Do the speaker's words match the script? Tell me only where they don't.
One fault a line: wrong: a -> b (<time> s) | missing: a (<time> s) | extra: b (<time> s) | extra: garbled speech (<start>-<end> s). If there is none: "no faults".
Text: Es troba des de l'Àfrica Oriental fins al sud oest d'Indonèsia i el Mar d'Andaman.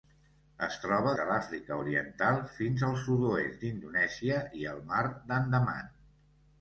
missing: des (1.1 s)